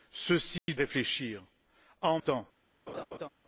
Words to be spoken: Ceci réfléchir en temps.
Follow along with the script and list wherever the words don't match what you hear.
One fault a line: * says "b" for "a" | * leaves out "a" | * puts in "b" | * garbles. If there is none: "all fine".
all fine